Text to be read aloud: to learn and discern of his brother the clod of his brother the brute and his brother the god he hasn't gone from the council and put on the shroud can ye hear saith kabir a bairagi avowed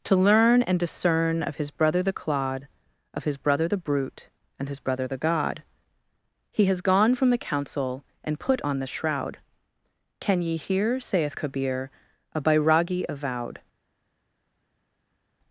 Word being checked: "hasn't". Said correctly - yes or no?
no